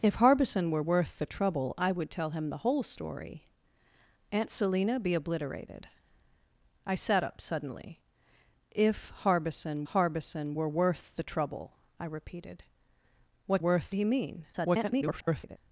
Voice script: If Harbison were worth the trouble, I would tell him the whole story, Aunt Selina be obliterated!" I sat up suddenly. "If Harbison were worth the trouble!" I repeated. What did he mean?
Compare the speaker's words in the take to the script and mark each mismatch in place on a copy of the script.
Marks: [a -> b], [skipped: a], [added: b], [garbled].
If Harbison were worth the trouble, I would tell him the whole story, Aunt Selina be obliterated!" I sat up suddenly. "If Harbison [added: Harbison] were worth the trouble!" I repeated. What [did -> worth] he mean? [garbled]